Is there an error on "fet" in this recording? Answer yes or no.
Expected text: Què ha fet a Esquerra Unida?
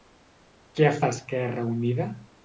yes